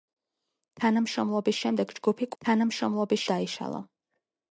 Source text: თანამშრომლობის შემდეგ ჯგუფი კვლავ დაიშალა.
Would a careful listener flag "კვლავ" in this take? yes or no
yes